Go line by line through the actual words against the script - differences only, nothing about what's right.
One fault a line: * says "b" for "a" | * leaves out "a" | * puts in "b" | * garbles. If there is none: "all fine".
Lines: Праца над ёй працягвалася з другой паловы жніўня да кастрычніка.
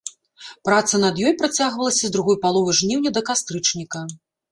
all fine